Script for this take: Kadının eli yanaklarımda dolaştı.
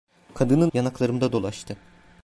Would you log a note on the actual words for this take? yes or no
yes